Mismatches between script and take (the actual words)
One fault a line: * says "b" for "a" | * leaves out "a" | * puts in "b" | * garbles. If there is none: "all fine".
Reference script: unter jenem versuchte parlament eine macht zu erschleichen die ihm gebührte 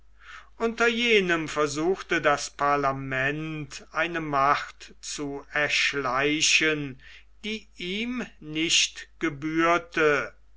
* puts in "das"
* puts in "nicht"